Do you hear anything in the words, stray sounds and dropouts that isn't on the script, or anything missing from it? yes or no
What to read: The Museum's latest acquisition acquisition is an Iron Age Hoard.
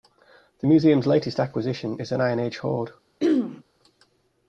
yes